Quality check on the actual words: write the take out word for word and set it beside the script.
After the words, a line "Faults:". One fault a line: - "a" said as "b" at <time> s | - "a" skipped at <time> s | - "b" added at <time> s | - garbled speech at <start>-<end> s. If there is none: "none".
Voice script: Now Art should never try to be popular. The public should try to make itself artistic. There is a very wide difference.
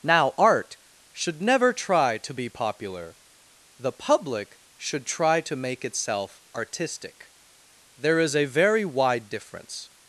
Now Art should never try to be popular. The public should try to make itself artistic. There is a very wide difference.
Faults:
none